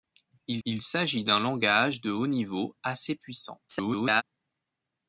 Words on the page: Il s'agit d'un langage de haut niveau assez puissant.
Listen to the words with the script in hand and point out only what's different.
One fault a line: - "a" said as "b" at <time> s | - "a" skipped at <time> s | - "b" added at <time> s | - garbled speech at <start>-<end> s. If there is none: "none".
- "il" added at 0.6 s
- garbled speech at 3.7-4.2 s